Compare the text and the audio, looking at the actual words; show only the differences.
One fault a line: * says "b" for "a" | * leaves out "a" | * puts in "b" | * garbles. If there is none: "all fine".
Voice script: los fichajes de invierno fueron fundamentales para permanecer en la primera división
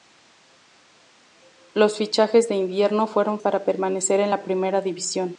* leaves out "fundamentales"